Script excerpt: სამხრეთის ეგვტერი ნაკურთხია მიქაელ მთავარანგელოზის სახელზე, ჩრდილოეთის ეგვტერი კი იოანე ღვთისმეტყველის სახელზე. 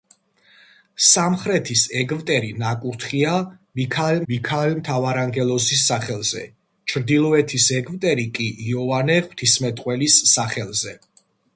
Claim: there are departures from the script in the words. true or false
true